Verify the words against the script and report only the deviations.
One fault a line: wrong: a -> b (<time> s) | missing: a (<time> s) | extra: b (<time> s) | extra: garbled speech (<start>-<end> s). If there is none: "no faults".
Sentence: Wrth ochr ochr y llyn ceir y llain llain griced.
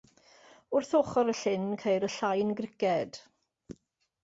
missing: ochr (1.3 s)
missing: llain (2.5 s)